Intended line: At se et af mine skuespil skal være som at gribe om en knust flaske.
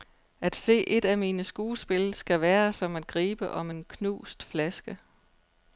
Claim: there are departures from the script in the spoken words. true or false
false